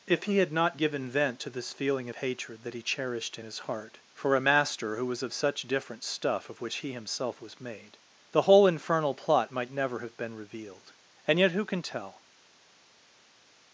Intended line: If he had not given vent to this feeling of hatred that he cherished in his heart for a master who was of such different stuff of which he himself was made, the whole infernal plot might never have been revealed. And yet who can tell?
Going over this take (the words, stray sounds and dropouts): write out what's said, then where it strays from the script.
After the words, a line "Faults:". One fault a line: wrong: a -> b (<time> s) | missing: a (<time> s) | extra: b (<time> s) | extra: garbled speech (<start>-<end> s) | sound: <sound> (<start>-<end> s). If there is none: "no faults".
If he had not given vent to this feeling of hatred that he cherished in his heart for a master who was of such different stuff of which he himself was made, the whole infernal plot might never have been revealed. And yet who can tell?
Faults:
no faults